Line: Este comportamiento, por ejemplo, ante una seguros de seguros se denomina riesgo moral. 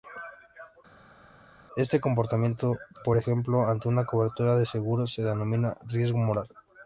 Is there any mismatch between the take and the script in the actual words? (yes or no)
yes